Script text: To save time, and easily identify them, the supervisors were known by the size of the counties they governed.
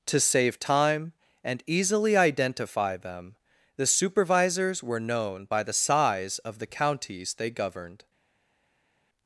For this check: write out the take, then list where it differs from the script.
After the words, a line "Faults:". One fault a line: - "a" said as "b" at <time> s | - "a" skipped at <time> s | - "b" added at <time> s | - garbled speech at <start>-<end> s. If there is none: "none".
To save time, and easily identify them, the supervisors were known by the size of the counties they governed.
Faults:
none